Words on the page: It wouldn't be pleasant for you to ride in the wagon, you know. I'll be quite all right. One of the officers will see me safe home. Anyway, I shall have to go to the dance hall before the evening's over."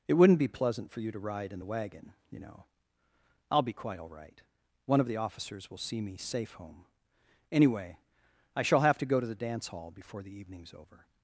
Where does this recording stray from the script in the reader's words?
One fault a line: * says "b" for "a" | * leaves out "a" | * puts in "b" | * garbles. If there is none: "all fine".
all fine